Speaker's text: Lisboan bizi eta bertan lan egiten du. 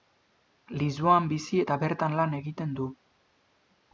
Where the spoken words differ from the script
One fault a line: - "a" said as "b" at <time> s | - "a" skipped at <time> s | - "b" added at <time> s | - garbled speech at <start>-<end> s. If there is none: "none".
none